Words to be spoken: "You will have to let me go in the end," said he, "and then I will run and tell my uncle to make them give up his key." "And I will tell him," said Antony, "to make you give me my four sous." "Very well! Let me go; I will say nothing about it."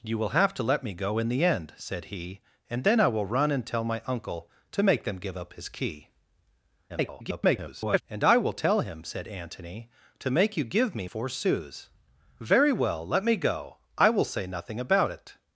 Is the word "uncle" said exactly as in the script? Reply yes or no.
yes